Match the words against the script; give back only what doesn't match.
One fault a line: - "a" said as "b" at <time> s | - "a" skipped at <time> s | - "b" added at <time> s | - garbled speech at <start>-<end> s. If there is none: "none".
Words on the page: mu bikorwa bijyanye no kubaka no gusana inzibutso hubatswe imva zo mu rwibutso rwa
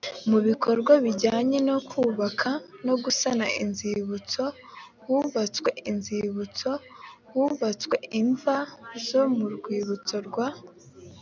- "inzibutso hubatswe" added at 5.9 s